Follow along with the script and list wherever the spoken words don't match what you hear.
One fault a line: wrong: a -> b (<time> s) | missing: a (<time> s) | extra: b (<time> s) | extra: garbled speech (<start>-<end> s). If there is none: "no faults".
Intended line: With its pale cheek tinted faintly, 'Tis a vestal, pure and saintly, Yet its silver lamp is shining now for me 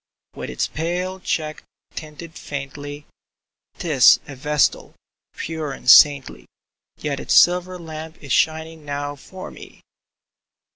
no faults